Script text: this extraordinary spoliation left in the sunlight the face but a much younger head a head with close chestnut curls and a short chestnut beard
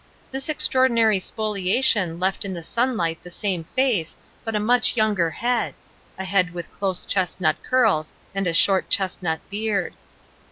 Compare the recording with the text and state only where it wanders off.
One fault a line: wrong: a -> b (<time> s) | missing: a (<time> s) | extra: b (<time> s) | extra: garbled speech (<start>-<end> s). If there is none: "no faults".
extra: same (3.3 s)